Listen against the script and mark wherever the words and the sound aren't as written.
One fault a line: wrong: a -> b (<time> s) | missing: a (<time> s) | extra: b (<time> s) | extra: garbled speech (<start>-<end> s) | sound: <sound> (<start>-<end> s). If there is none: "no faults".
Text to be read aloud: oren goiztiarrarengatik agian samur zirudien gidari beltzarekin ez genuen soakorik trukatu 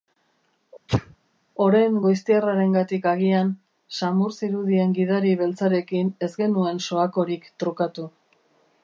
sound: sneeze (0.9-1.2 s)